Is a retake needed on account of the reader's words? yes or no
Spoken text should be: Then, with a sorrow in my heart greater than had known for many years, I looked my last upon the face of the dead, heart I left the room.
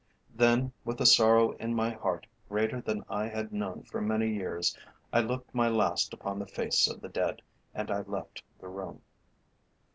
yes